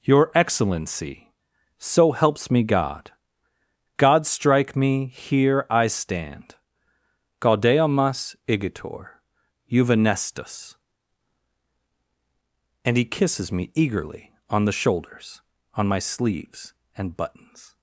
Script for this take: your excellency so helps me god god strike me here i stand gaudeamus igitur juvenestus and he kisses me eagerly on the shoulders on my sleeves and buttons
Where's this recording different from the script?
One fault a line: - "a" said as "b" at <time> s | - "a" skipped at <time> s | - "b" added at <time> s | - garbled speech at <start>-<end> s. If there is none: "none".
none